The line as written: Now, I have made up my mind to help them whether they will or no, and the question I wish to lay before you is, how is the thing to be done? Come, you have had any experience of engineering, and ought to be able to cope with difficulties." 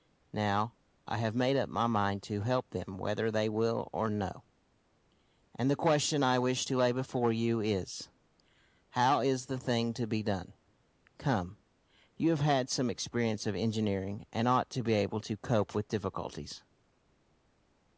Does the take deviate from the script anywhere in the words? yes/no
yes